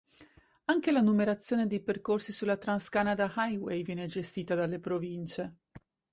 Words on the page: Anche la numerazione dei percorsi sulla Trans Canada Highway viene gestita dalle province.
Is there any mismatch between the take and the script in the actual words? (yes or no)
no